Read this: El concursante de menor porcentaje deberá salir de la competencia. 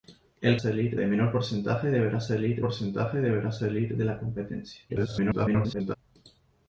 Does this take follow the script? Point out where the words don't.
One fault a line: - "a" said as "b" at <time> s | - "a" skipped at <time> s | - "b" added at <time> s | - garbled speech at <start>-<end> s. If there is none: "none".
- "concursante" said as "salir" at 0.5 s
- "porcentaje deberá salir" added at 2.6 s
- garbled speech at 4.9-5.9 s